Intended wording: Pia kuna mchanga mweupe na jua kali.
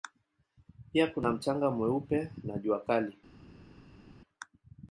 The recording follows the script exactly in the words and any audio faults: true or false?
true